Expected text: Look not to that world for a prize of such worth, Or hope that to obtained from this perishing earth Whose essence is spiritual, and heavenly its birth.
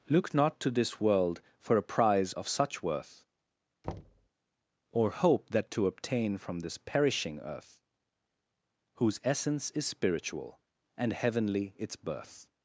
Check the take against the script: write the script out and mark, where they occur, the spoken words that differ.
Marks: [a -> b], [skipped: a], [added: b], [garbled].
Look not to [that -> this] world for a prize of such worth, Or hope that to [obtained -> obtain] from this perishing earth Whose essence is spiritual, and heavenly its birth.